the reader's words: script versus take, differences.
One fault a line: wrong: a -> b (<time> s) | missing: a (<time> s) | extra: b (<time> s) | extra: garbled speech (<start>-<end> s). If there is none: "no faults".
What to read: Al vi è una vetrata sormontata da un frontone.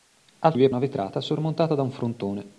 no faults